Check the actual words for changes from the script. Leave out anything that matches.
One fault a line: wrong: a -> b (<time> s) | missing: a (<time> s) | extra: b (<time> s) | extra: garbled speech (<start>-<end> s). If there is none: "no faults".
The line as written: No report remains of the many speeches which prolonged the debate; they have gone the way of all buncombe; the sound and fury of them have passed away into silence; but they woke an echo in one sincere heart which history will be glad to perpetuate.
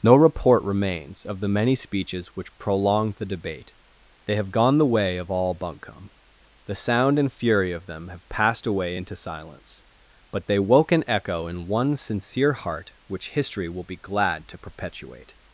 no faults